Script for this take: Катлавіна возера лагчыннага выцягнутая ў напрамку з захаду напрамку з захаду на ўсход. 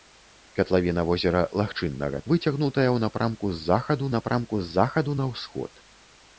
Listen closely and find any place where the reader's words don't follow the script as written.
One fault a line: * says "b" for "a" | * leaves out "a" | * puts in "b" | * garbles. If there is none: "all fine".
all fine